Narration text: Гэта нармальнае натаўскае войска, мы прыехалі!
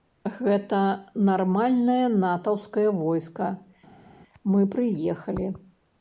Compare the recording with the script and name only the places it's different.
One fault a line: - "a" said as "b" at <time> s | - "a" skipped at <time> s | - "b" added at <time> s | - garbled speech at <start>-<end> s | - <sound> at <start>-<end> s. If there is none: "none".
none